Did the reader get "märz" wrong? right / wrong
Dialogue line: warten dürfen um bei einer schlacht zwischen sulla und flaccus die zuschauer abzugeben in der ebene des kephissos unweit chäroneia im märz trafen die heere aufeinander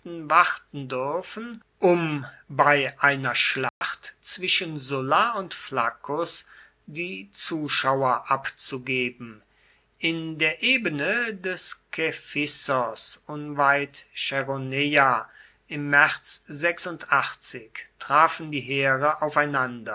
right